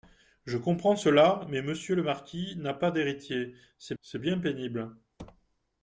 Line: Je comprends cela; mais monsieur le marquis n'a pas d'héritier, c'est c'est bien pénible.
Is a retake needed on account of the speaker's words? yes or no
no